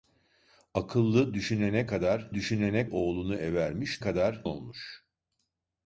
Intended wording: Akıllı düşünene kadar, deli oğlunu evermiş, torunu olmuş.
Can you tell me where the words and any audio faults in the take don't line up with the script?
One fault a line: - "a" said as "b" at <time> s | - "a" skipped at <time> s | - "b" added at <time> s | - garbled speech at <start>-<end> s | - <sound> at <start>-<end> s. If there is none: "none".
- "deli" said as "düşünene" at 2.3 s
- "torunu" said as "kadar" at 4.0 s